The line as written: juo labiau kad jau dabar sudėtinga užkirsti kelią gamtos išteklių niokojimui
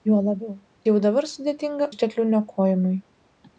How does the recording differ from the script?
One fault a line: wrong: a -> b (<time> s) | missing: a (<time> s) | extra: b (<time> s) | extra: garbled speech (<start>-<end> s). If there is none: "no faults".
missing: kad (0.5 s)
missing: užkirsti kelią gamtos (1.9 s)